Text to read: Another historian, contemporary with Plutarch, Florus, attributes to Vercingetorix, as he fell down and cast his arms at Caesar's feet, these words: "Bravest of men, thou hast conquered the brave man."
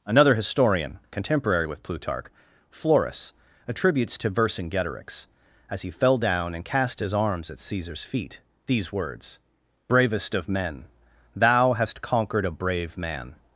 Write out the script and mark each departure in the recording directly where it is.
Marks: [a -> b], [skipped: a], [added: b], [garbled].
Another historian, contemporary with Plutarch, Florus, attributes to Vercingetorix, as he fell down and cast his arms at Caesar's feet, these words: "Bravest of men, thou hast conquered [the -> a] brave man."